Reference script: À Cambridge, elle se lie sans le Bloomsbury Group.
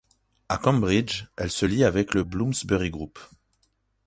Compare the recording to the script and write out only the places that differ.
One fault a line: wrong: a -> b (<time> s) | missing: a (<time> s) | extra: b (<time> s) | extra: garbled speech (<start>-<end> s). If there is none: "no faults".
wrong: sans -> avec (1.8 s)